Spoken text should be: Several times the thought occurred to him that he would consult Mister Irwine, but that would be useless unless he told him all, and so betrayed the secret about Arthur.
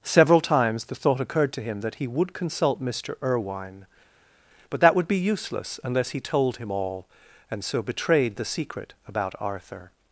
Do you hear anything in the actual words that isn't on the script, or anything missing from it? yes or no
no